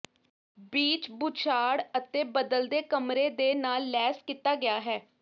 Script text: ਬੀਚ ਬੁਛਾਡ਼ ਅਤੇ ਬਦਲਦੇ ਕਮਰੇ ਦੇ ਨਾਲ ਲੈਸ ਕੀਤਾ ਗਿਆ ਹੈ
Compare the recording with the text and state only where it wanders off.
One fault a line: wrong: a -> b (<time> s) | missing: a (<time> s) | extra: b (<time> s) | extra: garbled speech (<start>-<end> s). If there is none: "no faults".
no faults